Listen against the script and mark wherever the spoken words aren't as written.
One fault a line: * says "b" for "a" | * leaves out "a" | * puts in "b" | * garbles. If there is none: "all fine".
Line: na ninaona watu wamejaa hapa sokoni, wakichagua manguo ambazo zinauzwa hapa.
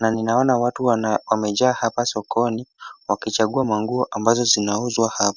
all fine